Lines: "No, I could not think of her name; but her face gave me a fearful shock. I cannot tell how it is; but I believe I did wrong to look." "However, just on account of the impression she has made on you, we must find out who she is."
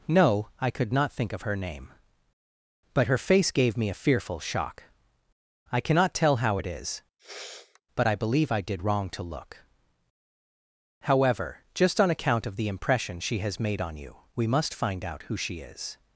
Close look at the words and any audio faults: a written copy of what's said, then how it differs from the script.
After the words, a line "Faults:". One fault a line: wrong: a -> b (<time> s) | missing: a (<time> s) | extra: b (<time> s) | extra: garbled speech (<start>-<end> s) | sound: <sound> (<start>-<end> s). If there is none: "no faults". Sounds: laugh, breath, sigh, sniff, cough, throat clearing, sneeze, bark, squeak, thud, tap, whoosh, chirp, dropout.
"No, I could not think of her name; but her face gave me a fearful shock. I cannot tell how it is; but I believe I did wrong to look." "However, just on account of the impression she has made on you, we must find out who she is."
Faults:
sound: sniff (7.2-7.8 s)